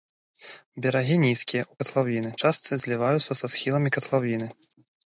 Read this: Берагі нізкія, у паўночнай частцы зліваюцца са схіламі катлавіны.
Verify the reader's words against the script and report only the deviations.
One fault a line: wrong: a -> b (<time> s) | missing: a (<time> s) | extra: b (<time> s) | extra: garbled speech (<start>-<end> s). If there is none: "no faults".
wrong: паўночнай -> катлавіны (1.8 s)